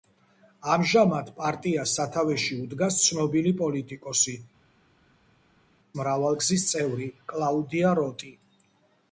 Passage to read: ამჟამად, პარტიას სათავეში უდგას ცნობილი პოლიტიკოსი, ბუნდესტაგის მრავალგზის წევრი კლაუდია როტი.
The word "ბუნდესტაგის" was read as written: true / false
false